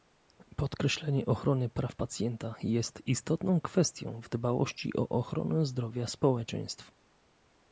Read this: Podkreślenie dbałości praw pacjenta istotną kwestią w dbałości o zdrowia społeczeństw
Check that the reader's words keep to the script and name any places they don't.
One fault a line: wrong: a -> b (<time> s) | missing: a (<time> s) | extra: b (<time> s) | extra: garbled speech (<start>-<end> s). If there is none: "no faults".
wrong: dbałości -> ochrony (1.2 s)
extra: jest (2.6 s)
extra: ochronę (5.1 s)